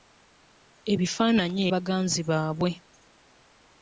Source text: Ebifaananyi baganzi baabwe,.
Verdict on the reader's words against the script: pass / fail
pass